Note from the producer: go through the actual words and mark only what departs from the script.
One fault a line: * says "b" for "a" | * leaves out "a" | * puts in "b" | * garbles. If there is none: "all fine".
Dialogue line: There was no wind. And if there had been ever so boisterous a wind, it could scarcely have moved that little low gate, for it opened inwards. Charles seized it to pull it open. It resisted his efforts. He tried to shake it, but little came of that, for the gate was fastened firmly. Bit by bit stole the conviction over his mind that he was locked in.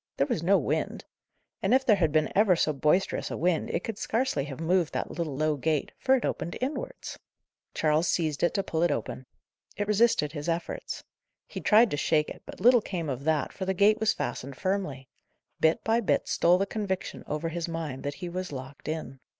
all fine